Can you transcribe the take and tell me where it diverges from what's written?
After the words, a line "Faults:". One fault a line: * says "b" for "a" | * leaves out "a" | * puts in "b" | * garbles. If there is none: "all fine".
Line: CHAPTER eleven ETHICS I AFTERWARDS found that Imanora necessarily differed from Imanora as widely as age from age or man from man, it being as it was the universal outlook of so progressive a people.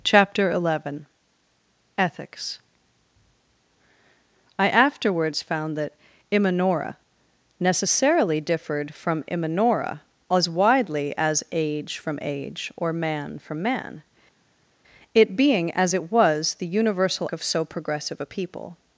CHAPTER eleven ETHICS I AFTERWARDS found that Imanora necessarily differed from Imanora as widely as age from age or man from man, it being as it was the universal of so progressive a people.
Faults:
* leaves out "outlook"